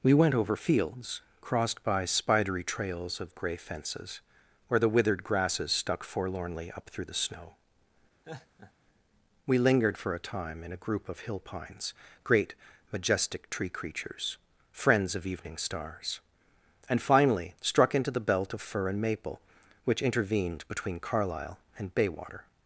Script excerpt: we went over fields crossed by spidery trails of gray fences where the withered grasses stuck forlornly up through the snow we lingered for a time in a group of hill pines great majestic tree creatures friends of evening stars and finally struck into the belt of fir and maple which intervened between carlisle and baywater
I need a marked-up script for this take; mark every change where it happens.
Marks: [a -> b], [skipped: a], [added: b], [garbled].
we went over fields crossed by spidery trails of gray fences where the withered grasses stuck forlornly up through the snow we lingered for a time in a group of hill pines great majestic tree creatures friends of evening stars and finally struck into the belt of fir and maple which intervened between carlisle and baywater